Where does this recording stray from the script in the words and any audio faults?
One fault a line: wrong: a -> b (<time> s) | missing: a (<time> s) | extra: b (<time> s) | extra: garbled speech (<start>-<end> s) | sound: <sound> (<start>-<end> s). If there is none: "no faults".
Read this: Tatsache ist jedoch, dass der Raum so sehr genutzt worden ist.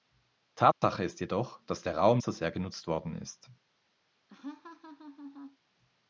sound: dropout (0.7-0.8 s)
sound: laugh (4.3-5.6 s)